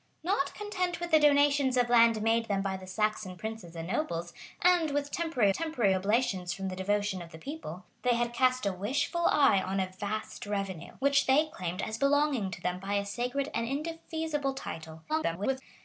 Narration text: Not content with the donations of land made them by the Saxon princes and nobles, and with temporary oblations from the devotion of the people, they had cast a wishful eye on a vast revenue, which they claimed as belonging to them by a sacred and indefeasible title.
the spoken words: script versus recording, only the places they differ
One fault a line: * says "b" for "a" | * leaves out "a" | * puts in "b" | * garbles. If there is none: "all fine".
* puts in "temporary"
* garbles